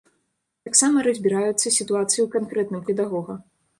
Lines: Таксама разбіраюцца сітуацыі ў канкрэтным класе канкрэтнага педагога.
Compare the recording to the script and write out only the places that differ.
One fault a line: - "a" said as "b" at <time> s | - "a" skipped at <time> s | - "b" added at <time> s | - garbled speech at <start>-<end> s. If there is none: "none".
- "класе канкрэтнага" skipped at 2.8 s